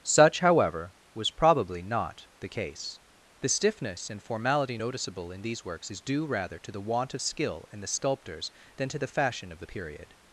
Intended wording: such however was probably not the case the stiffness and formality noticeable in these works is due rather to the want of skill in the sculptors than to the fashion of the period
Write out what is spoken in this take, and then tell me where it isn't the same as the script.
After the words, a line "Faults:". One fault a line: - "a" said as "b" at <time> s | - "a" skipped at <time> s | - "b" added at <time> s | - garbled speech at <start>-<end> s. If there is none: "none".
such however was probably not the case the stiffness and formality noticeable in these works is due rather to the want of skill in the sculptors than to the fashion of the period
Faults:
none